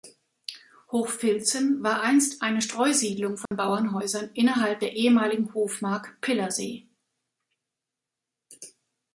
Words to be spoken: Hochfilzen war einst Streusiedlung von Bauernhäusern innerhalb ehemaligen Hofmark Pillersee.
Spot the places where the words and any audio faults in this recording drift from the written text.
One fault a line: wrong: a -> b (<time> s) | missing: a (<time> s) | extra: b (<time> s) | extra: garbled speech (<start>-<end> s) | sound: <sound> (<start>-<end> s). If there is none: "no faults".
extra: eine (2.4 s)
sound: dropout (3.5-3.5 s)
extra: der (4.8 s)